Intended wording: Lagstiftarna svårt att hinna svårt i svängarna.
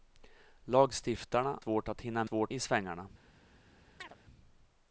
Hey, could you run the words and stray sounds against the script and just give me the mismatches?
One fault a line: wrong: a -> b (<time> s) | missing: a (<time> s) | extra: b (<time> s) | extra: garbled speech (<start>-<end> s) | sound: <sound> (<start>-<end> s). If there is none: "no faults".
sound: chirp (4.0-4.2 s)